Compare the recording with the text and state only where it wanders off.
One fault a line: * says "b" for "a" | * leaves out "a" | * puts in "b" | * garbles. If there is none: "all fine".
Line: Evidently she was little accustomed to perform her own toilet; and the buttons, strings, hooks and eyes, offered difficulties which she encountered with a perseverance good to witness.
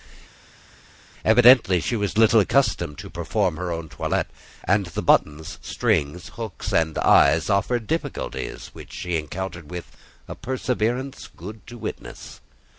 all fine